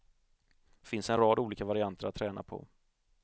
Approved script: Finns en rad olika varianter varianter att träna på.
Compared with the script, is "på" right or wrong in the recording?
right